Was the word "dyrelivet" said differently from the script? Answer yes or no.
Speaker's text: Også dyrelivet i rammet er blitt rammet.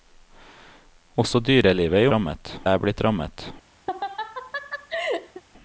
no